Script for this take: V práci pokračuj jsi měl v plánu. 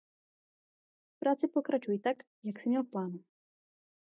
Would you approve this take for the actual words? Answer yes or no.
no